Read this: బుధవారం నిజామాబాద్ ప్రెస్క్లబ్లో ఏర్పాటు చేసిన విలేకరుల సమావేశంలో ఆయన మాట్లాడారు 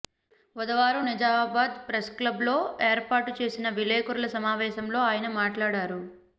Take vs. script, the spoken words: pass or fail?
pass